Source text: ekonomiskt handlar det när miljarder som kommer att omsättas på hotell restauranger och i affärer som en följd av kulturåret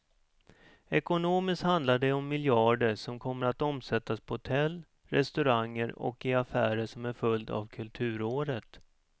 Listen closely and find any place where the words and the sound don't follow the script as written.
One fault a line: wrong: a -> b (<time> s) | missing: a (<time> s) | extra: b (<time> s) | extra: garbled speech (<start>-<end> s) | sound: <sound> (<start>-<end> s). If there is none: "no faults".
wrong: när -> om (2.1 s)